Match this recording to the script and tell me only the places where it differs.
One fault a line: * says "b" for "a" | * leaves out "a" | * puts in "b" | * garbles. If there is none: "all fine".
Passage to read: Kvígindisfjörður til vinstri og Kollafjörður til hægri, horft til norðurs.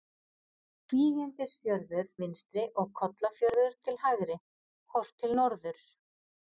* leaves out "til"